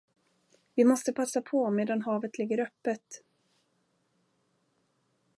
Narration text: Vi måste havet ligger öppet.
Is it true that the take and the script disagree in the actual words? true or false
true